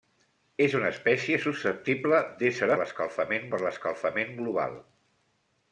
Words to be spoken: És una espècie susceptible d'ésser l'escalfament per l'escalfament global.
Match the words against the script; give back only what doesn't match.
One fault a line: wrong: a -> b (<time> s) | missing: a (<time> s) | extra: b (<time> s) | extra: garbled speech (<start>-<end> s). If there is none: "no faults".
no faults